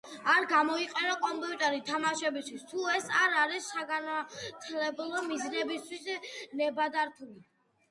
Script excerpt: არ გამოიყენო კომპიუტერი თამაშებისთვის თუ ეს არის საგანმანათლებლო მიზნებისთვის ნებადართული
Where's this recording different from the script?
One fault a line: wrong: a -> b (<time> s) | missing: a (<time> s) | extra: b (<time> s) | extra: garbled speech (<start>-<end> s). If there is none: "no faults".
extra: არ (3.2 s)